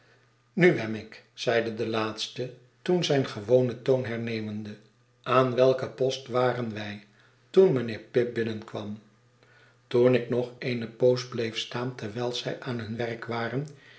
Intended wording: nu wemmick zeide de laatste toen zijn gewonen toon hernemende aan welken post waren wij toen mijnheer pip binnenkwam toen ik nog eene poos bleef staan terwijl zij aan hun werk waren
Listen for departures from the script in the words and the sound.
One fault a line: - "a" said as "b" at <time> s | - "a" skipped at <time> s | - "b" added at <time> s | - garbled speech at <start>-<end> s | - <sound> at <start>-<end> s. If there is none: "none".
none